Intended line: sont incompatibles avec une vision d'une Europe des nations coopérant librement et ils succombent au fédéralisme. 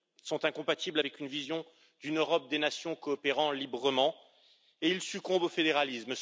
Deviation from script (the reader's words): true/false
false